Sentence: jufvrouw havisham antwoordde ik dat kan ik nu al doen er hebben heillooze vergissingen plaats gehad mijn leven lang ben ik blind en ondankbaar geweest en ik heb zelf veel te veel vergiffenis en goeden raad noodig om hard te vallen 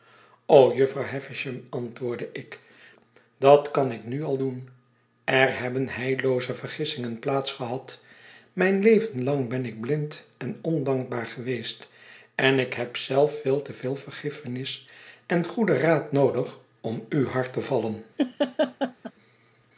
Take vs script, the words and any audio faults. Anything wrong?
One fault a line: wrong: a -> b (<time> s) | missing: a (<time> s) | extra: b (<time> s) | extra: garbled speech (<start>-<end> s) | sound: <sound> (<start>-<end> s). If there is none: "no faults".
extra: u (17.1 s)
sound: laugh (18.2-19.1 s)